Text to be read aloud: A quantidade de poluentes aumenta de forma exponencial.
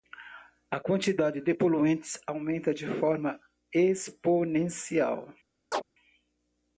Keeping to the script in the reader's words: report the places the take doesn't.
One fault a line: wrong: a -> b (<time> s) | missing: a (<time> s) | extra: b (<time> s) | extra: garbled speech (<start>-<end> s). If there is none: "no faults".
no faults